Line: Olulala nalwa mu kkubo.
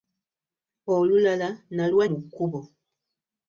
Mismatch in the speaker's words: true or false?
false